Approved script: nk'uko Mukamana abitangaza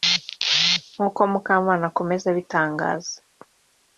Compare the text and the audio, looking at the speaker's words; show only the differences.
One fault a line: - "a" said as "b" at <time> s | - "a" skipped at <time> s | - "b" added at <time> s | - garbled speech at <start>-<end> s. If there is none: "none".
- "akomeza" added at 1.9 s